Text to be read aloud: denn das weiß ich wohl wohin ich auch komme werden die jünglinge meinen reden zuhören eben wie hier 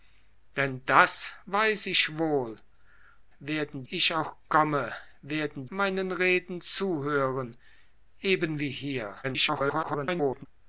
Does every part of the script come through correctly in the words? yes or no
no